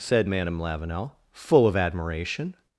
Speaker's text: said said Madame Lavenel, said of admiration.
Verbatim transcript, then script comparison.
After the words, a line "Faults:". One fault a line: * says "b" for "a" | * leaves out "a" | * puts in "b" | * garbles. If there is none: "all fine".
said Madame Lavenel, full of admiration.
Faults:
* leaves out "said"
* says "full" for "said"